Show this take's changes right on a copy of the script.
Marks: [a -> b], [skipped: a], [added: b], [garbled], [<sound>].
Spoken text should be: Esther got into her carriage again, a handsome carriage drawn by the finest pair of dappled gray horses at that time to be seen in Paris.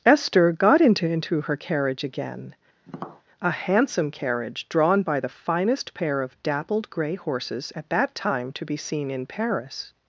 Esther got into [added: into] her carriage again, [tap] a handsome carriage drawn by the finest pair of dappled gray horses at that time to be seen in Paris.